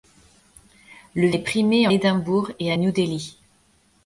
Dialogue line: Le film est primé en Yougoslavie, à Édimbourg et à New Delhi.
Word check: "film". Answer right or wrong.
wrong